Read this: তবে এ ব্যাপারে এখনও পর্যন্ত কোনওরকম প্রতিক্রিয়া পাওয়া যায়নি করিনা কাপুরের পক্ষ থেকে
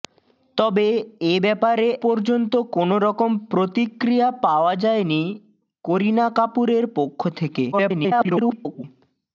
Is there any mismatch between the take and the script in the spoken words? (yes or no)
yes